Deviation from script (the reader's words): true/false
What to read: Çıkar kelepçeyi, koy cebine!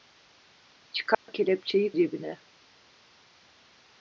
true